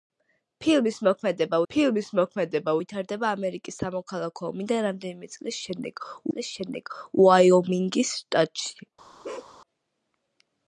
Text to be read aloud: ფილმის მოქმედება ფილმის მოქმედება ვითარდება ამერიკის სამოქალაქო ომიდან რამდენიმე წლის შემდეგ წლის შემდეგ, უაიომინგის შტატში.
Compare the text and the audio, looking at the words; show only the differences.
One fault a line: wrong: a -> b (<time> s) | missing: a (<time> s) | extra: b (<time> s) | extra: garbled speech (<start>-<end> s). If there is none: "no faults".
no faults